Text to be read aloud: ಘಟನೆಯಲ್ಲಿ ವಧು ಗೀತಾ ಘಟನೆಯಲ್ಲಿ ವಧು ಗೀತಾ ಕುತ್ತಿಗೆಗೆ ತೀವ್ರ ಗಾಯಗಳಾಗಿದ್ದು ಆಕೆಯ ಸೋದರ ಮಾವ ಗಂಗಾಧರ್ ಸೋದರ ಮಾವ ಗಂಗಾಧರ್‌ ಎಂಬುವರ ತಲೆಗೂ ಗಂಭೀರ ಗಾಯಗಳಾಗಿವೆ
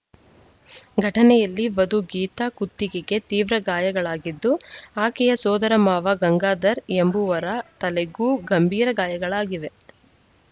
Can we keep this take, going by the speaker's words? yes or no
no